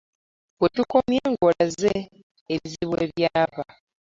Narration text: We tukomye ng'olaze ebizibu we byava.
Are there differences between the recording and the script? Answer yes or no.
no